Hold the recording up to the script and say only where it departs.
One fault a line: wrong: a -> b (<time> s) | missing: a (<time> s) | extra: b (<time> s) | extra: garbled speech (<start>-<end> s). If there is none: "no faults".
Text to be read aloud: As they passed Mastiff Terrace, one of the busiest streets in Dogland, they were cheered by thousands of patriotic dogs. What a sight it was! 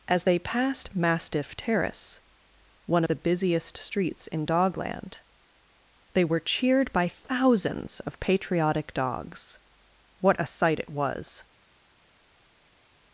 missing: of (3.0 s)